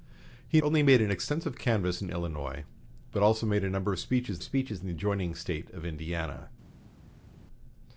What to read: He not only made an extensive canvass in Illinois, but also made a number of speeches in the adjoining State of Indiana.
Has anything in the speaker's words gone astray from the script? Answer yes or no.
yes